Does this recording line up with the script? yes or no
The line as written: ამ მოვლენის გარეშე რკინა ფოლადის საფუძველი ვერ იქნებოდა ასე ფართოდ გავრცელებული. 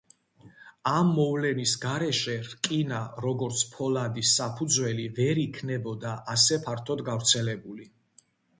no